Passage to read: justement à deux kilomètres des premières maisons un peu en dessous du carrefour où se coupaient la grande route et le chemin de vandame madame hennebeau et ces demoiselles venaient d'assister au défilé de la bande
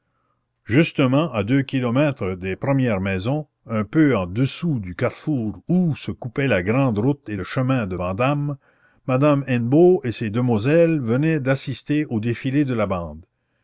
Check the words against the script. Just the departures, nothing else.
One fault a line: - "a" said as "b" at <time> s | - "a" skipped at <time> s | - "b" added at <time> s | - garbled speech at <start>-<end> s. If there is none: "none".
none